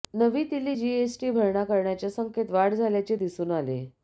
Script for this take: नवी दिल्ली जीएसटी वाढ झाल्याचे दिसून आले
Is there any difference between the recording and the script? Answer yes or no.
yes